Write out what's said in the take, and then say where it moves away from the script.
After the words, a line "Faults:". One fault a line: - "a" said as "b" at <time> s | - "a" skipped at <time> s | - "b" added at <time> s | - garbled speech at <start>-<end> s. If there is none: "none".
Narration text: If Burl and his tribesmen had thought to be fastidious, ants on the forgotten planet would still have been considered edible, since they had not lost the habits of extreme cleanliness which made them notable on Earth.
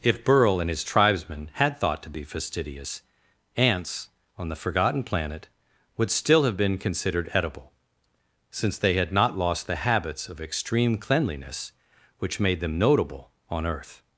If Burl and his tribesmen had thought to be fastidious, ants on the forgotten planet would still have been considered edible, since they had not lost the habits of extreme cleanliness which made them notable on Earth.
Faults:
none